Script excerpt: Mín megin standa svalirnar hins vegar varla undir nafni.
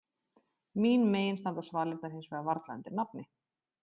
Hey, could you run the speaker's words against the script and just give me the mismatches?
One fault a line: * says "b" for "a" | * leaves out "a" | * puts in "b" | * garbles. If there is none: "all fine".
all fine